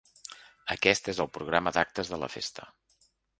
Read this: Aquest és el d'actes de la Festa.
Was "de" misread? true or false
false